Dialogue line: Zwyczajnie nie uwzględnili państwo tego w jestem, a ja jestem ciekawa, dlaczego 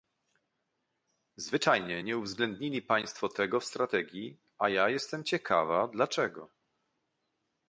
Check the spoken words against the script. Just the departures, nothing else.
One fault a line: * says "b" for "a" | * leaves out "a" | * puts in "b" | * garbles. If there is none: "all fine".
* says "strategii" for "jestem"